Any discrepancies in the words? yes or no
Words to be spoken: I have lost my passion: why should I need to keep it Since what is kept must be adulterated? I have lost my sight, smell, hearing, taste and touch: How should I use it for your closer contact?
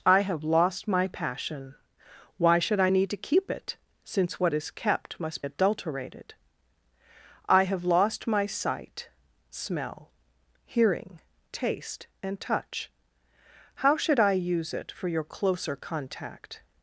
yes